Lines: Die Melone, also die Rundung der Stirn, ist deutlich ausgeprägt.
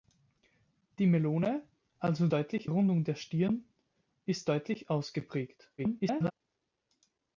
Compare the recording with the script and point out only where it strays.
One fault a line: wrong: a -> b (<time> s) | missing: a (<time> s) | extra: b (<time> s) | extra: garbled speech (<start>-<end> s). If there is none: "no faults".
wrong: die -> deutlich (2.3 s)
extra: garbled speech (5.8-6.3 s)